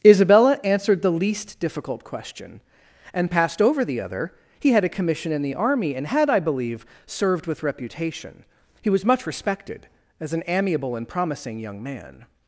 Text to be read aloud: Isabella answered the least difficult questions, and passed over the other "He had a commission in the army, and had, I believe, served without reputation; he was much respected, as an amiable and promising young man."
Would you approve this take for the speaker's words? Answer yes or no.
no